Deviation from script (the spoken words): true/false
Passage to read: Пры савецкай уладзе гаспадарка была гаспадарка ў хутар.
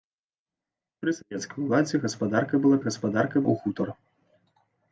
false